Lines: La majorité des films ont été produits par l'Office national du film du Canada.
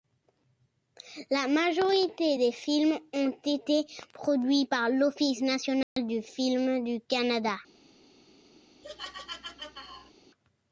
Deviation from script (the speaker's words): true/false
false